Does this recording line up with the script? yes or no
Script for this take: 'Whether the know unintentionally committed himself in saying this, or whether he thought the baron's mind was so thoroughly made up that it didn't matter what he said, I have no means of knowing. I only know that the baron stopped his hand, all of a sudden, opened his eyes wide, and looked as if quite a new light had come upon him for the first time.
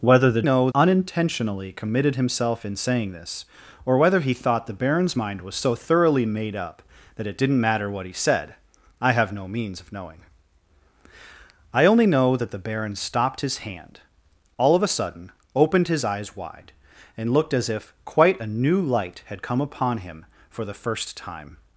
yes